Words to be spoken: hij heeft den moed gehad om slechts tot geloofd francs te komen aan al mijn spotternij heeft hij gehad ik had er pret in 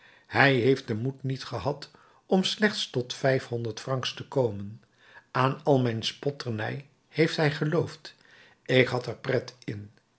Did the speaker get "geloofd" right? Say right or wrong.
wrong